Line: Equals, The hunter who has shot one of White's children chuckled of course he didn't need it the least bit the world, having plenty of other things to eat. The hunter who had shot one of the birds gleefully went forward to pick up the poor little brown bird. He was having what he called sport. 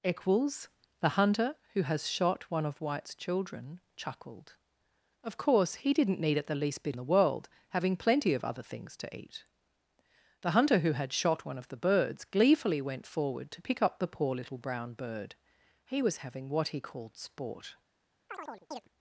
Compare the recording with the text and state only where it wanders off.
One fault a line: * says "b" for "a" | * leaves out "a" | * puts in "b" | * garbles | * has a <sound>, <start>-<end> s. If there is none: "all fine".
* has a chirp, 18.3-18.9 s